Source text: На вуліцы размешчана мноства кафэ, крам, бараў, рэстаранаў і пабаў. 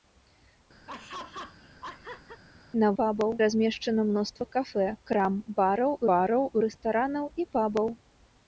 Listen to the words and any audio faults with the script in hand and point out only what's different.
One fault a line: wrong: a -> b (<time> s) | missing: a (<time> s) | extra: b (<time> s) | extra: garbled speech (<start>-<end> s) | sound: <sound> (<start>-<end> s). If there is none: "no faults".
sound: laugh (0.9-2.4 s)
wrong: вуліцы -> пабаў (3.0 s)
extra: бараў (6.1 s)